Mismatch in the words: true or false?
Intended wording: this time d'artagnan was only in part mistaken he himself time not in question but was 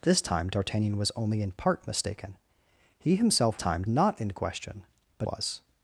false